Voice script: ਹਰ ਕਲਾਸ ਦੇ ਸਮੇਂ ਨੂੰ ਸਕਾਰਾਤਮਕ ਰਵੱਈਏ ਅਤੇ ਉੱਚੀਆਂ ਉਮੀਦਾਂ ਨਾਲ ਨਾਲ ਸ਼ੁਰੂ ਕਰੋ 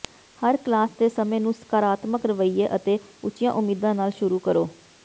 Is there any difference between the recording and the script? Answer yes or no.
yes